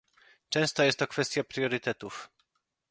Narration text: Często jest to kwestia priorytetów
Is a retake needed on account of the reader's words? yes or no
no